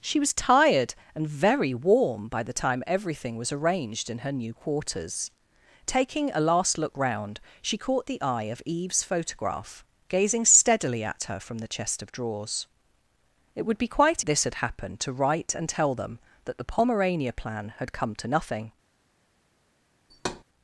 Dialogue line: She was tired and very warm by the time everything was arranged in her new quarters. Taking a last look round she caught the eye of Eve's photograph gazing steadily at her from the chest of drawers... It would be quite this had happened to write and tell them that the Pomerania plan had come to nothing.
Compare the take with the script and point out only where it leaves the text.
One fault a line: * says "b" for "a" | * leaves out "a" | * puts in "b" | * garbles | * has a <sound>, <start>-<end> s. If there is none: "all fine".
* has a thud, 20.1-20.4 s